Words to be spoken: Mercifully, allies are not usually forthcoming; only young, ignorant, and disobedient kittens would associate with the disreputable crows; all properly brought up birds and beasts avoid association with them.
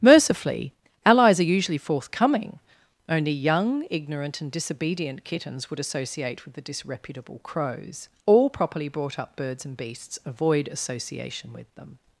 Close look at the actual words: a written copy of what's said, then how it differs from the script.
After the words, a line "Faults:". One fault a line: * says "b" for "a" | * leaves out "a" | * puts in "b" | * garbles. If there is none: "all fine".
Mercifully, allies are usually forthcoming; only young, ignorant, and disobedient kittens would associate with the disreputable crows; all properly brought up birds and beasts avoid association with them.
Faults:
* leaves out "not"